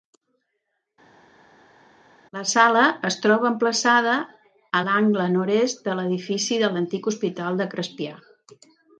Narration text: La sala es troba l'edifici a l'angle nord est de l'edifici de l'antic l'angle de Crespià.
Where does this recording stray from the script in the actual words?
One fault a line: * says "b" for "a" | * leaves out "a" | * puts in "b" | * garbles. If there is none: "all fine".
* says "emplaçada" for "l'edifici"
* says "hospital" for "l'angle"